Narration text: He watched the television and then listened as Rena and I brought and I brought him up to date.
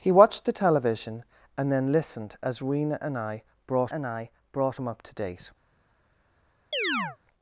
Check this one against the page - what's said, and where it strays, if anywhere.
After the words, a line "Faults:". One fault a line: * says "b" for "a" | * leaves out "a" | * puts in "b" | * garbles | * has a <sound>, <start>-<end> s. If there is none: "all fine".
He watched the television and then listened as Rena and I brought and I brought him up to date.
Faults:
* has a chirp, 6.7-7.2 s